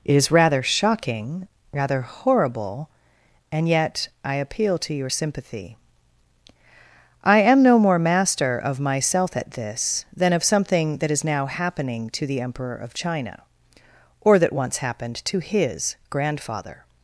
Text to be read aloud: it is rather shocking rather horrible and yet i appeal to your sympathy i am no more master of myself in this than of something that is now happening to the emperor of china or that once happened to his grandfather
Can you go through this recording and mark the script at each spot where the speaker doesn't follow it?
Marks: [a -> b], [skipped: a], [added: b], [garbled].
it is rather shocking rather horrible and yet i appeal to your sympathy i am no more master of myself [in -> at] this than of something that is now happening to the emperor of china or that once happened to his grandfather